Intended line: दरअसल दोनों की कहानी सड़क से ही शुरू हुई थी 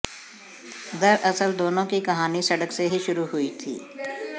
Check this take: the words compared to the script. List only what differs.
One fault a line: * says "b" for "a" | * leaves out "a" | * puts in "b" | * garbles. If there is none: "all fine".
all fine